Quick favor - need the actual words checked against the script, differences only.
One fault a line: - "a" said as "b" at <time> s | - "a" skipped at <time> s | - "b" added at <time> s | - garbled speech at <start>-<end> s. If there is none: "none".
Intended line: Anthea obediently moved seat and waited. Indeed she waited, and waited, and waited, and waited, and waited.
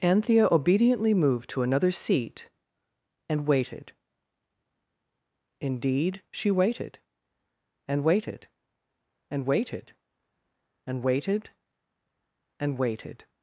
- "to another" added at 1.5 s